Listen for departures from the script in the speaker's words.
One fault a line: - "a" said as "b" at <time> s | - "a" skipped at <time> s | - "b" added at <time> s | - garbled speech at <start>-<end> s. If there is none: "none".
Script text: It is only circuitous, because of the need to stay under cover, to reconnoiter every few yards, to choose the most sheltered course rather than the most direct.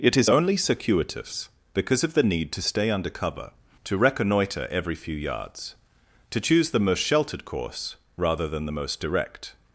none